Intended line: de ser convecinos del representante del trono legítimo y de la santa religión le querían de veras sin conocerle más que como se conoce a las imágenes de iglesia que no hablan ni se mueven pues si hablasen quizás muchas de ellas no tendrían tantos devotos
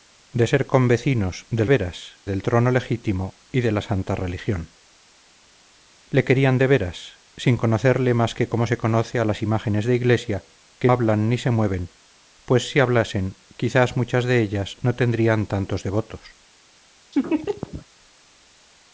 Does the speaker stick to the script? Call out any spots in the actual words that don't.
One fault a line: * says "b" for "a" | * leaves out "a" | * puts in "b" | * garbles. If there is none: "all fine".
* says "veras" for "representante"
* leaves out "no"